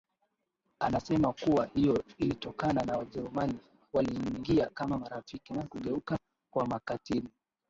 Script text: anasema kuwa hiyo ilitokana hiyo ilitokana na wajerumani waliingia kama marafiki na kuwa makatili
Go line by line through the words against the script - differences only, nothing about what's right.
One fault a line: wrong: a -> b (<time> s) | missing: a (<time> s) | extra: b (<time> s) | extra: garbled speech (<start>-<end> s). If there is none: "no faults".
missing: hiyo ilitokana (2.8 s)
extra: kugeuka (5.7 s)